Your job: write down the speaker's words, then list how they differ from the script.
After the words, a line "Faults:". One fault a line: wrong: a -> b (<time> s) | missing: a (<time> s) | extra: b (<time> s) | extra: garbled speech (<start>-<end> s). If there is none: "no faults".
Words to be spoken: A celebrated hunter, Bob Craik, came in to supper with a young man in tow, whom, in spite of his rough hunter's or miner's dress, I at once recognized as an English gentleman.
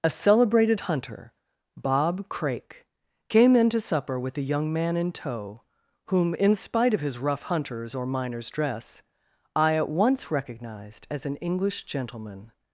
A celebrated hunter, Bob Craik, came in to supper with a young man in tow, whom, in spite of his rough hunter's or miner's dress, I at once recognized as an English gentleman.
Faults:
no faults